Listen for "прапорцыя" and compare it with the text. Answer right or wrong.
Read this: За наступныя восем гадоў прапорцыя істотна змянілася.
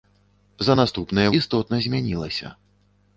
wrong